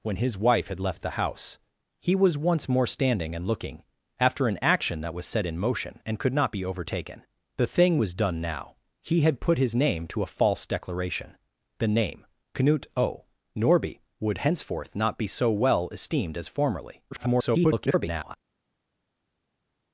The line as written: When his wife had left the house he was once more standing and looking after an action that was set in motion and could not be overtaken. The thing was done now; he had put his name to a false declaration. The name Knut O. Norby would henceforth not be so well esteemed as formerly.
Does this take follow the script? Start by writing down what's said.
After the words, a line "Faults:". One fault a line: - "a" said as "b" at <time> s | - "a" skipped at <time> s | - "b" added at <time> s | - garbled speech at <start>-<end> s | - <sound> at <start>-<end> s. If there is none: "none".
When his wife had left the house he was once more standing and looking after an action that was set in motion and could not be overtaken. The thing was done now; he had put his name to a false declaration. The name Knut O. Norby would henceforth not be so well esteemed as formerly. [garbled]
Faults:
- garbled speech at 17.1-18.4 s